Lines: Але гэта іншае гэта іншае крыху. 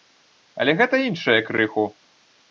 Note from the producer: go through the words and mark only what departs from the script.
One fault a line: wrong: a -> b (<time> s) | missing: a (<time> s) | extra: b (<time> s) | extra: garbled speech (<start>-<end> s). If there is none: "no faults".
missing: гэта іншае (1.4 s)